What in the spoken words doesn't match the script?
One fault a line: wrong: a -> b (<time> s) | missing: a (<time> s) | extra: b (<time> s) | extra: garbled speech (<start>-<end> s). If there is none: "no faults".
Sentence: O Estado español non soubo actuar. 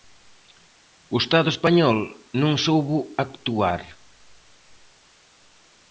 no faults